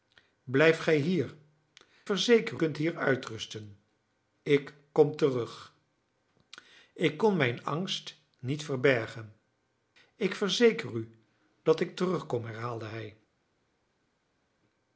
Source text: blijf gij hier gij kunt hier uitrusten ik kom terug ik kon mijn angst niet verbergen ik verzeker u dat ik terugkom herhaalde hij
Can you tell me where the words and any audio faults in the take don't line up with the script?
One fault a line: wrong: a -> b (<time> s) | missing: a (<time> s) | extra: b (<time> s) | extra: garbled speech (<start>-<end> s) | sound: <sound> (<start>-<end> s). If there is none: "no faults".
wrong: gij -> verzeker (2.0 s)